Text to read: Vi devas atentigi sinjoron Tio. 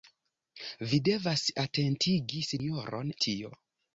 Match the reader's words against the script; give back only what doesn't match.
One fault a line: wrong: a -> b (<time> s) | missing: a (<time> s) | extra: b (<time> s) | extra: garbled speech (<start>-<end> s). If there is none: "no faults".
no faults